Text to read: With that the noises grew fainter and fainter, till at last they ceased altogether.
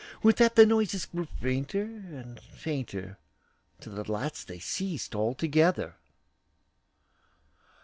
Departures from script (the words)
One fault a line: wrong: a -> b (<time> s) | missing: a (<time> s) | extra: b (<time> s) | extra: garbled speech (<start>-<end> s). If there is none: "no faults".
no faults